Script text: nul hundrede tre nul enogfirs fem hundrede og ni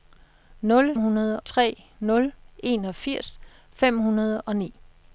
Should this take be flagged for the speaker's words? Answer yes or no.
no